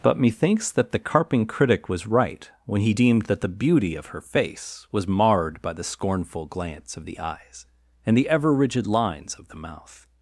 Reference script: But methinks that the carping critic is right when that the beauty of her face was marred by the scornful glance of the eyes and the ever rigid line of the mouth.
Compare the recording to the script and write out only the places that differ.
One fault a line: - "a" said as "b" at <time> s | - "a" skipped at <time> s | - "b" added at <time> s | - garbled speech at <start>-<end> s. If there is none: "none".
- "is" said as "was" at 1.9 s
- "he deemed" added at 2.8 s
- "line" said as "lines" at 8.9 s